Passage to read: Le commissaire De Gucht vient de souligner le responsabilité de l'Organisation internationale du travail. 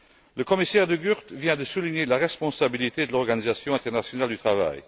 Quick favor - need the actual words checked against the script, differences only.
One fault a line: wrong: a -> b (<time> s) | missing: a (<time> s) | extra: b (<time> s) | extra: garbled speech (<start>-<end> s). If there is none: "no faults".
wrong: le -> la (2.0 s)